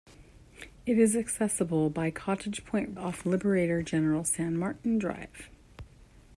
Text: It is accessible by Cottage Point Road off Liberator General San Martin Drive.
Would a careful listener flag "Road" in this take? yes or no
yes